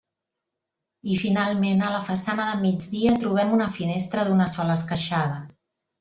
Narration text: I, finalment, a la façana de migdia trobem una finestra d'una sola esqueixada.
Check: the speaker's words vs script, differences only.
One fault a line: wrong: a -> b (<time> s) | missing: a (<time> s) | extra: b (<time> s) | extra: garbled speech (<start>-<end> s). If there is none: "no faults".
no faults